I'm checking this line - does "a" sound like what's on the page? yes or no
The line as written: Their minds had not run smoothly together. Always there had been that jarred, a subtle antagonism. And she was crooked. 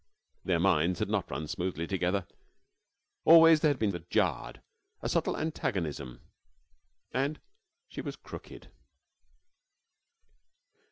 yes